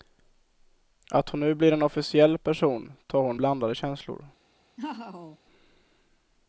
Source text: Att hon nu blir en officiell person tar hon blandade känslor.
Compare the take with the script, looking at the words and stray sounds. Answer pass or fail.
fail